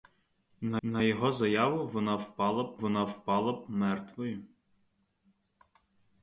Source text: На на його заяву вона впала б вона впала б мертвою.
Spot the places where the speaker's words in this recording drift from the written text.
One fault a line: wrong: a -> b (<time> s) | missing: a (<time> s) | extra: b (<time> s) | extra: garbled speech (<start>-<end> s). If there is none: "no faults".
no faults